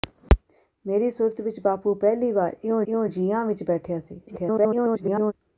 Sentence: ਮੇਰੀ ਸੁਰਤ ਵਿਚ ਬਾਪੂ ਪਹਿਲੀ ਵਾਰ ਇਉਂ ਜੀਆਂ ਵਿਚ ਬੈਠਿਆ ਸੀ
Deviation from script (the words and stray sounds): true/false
true